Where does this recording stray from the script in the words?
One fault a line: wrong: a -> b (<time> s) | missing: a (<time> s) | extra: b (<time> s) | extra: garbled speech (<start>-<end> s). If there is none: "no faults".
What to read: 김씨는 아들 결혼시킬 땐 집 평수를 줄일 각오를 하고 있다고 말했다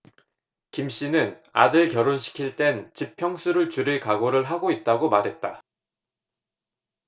no faults